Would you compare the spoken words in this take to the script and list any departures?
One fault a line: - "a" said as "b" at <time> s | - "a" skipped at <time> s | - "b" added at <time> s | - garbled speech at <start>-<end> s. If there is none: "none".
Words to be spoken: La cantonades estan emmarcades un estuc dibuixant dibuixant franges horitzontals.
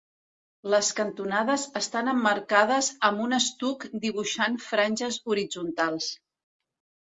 - "La" said as "Les" at 0.7 s
- "amb" added at 3.1 s
- "dibuixant" skipped at 4.6 s